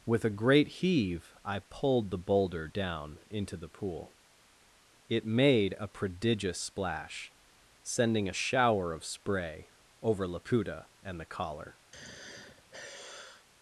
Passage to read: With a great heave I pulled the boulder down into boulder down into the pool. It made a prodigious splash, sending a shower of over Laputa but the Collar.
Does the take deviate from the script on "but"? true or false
true